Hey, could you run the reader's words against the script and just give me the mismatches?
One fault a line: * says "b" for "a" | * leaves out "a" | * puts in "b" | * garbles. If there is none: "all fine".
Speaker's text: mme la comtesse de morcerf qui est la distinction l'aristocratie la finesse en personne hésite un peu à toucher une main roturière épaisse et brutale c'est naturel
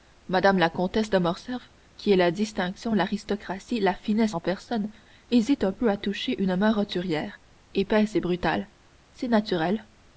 all fine